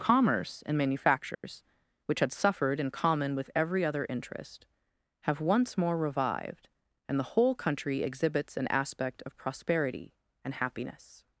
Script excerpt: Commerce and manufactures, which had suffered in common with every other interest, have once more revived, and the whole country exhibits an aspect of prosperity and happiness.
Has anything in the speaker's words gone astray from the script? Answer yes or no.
no